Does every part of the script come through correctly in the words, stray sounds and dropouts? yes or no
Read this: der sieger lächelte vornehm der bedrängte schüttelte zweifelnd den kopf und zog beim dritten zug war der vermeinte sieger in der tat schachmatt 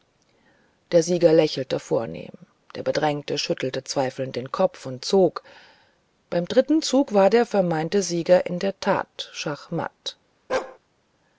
no